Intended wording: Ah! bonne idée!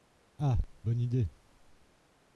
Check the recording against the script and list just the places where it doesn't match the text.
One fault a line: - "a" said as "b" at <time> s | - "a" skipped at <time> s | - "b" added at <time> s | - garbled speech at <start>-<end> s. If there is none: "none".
none